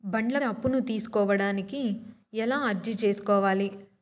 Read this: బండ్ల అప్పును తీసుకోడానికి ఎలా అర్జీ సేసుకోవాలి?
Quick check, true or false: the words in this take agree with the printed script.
true